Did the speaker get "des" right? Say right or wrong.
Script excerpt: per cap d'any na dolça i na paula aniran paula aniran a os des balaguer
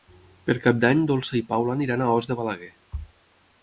wrong